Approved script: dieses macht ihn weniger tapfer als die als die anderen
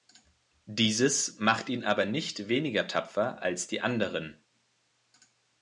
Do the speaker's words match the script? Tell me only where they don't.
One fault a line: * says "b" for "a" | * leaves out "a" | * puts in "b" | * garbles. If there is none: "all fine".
* puts in "aber nicht"
* leaves out "als die"